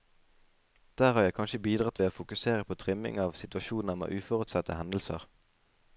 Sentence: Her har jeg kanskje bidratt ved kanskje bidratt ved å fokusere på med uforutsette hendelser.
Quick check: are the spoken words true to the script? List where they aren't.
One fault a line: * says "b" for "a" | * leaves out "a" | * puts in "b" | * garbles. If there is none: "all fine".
* says "Der" for "Her"
* says "å fokusere på trimming av situasjoner" for "kanskje bidratt ved å fokusere på"